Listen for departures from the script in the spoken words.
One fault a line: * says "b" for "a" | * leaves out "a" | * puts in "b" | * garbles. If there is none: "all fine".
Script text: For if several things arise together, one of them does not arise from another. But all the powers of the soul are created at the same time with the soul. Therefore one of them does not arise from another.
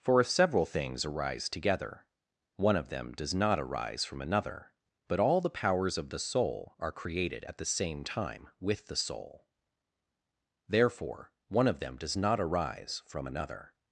all fine